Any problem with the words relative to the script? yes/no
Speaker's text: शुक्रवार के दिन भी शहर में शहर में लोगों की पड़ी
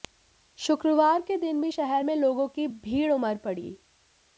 yes